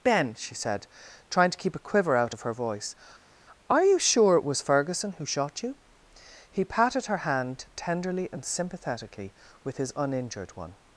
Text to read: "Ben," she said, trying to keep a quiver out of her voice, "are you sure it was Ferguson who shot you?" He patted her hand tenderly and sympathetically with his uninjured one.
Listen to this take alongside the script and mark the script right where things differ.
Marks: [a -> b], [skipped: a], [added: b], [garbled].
"Ben," she said, trying to keep a quiver out of her voice, "are you sure it was Ferguson who shot you?" He patted her hand tenderly and sympathetically with his uninjured one.